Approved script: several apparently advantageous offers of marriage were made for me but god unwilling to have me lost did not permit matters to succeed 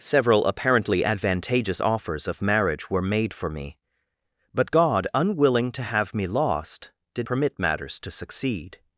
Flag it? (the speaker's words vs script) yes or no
yes